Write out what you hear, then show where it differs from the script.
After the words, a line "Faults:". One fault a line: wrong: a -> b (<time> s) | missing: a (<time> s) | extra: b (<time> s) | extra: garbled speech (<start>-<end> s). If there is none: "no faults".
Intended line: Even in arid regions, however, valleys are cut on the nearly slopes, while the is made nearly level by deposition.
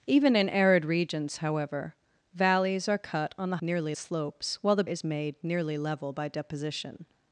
Even in arid regions, however, valleys are cut on the nearly slopes, while the is made nearly level by deposition.
Faults:
no faults